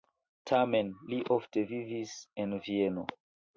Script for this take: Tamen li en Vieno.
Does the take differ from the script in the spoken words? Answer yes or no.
yes